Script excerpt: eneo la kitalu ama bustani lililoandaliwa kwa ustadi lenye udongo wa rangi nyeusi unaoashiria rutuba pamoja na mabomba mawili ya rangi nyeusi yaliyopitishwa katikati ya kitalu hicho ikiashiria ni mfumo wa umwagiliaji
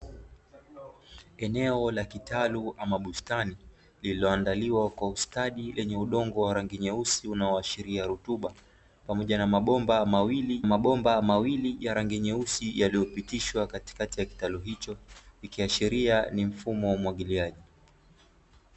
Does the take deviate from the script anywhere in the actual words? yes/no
yes